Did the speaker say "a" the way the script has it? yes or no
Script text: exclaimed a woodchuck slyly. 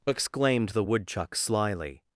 no